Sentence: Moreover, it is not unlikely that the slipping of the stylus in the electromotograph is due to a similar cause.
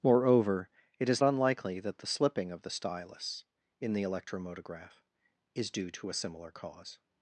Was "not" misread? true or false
true